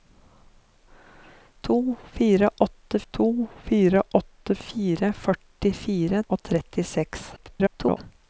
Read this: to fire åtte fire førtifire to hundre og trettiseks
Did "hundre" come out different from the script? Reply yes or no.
yes